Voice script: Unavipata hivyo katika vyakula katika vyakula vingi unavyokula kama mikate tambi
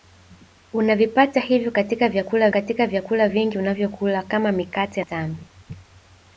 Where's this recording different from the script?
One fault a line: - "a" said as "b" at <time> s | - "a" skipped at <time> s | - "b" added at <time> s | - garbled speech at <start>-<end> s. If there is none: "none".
none